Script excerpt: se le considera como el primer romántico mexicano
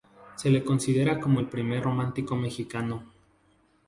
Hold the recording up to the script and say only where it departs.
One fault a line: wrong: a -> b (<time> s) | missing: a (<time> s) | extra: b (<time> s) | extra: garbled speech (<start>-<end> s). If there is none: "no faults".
no faults